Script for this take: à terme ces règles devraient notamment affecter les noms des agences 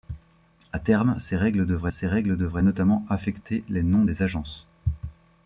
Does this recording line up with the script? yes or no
no